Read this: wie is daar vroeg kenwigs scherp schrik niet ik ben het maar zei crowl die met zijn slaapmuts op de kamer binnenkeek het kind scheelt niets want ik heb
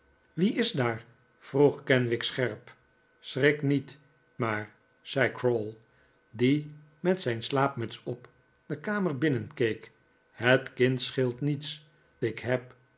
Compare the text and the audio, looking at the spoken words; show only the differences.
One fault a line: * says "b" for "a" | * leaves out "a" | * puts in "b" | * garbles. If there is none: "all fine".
* leaves out "ik ben het"
* leaves out "want"